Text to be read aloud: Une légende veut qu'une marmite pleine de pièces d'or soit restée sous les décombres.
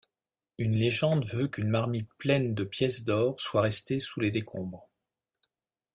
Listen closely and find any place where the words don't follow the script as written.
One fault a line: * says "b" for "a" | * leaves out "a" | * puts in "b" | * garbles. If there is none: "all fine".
all fine